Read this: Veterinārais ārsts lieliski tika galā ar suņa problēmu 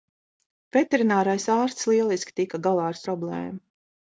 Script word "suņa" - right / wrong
wrong